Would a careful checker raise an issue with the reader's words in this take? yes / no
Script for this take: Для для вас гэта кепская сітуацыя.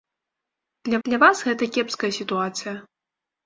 no